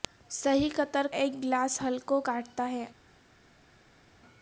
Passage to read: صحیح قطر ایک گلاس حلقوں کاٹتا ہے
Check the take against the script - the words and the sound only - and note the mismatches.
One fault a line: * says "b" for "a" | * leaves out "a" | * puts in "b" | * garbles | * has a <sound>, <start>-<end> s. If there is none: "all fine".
all fine